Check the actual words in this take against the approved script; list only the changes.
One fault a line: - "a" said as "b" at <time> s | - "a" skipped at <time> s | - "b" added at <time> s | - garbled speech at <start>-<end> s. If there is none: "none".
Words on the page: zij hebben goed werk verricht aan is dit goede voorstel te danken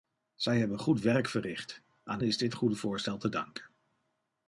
none